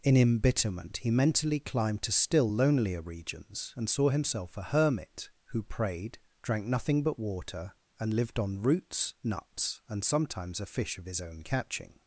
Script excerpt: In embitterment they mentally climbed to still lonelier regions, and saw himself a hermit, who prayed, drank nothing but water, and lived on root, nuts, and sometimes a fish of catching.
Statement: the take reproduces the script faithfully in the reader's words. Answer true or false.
false